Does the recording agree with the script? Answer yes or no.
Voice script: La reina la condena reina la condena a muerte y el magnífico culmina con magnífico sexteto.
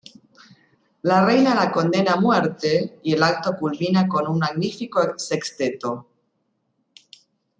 no